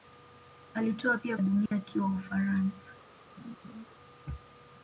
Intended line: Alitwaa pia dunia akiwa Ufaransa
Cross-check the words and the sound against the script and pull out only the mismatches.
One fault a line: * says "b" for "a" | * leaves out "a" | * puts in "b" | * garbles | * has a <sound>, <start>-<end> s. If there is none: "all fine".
* has a dropout, 1.7-1.7 s
* has a laugh, 3.4-3.9 s